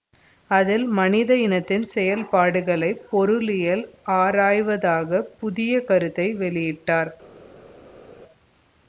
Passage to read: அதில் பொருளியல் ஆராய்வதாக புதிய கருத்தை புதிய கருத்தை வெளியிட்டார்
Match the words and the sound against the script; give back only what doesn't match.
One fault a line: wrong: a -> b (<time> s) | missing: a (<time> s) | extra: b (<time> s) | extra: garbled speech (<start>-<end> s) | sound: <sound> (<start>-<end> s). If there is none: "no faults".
extra: மனித இனத்தின் செயல்பாடுகளை (0.9 s)
missing: புதிய கருத்தை (6.3 s)